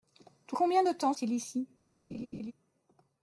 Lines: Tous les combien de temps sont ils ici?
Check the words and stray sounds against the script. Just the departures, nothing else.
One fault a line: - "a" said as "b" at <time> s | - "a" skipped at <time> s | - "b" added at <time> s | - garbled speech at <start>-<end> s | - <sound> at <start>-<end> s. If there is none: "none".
- "les" skipped at 0.6 s
- "sont" skipped at 1.1 s
- laugh at 2.1-2.5 s